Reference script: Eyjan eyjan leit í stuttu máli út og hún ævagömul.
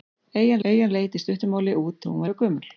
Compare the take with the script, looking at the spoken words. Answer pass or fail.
pass